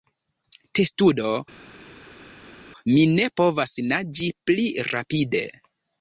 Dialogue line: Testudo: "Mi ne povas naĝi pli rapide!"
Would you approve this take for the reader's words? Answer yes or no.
yes